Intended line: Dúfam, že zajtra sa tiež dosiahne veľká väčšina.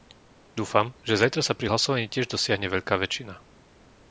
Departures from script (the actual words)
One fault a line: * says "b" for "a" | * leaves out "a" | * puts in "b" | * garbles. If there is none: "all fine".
* puts in "pri hlasovaní"